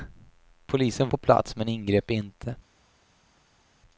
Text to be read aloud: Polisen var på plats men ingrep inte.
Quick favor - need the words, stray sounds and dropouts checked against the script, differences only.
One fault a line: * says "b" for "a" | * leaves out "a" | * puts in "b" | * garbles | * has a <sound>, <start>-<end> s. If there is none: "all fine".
* leaves out "var"